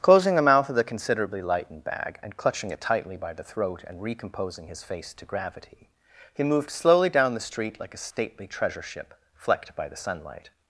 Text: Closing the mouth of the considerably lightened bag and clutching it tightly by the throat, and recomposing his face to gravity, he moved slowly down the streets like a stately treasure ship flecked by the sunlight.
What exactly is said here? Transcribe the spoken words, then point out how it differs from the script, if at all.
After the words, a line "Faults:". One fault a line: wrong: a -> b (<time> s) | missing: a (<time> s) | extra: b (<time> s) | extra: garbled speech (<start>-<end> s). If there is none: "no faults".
Closing the mouth of the considerably lightened bag and clutching it tightly by the throat, and recomposing his face to gravity, he moved slowly down the street like a stately treasure ship flecked by the sunlight.
Faults:
wrong: streets -> street (7.4 s)